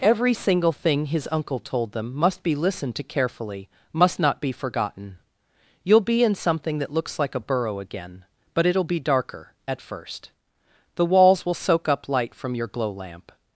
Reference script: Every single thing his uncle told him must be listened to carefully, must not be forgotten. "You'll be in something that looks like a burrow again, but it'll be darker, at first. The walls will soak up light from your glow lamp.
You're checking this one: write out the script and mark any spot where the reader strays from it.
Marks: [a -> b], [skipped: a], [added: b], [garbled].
Every single thing his uncle told [him -> them] must be listened to carefully, must not be forgotten. "You'll be in something that looks like a burrow again, but it'll be darker, at first. The walls will soak up light from your glow lamp.